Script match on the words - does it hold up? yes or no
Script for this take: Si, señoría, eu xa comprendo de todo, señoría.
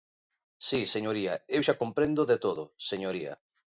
yes